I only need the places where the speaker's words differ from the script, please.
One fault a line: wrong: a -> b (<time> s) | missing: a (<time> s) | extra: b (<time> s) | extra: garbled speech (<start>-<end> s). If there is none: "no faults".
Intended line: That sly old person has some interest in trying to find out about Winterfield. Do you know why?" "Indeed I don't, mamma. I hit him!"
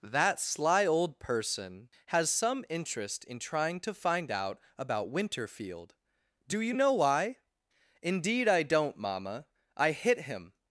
no faults